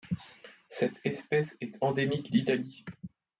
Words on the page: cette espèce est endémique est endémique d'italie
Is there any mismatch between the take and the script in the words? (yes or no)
yes